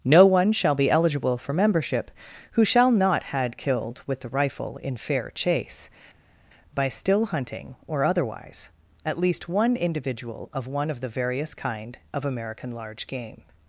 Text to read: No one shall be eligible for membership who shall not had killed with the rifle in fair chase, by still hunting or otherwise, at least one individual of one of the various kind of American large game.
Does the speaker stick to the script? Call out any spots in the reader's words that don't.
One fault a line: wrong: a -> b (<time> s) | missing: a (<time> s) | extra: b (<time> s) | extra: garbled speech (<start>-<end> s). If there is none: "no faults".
no faults